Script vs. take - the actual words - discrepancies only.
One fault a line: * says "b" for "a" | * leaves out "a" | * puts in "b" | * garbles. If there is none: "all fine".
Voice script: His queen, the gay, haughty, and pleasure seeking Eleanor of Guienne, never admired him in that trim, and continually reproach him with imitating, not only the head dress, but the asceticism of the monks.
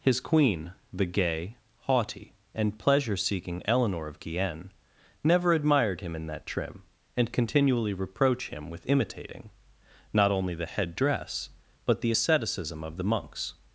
all fine